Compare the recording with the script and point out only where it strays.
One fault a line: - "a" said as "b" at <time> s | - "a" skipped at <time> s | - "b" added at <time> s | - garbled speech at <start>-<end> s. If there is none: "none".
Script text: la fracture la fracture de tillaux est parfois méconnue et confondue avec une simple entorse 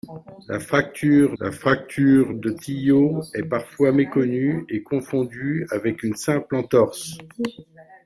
none